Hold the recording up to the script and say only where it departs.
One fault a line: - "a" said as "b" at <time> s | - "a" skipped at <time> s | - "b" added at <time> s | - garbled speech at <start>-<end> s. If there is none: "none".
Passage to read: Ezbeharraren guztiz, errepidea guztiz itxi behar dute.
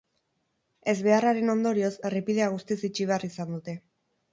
- "guztiz" said as "ondorioz" at 1.6 s
- "izan" added at 3.3 s